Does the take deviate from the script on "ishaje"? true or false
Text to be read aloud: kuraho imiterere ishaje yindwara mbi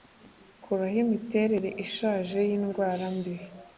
false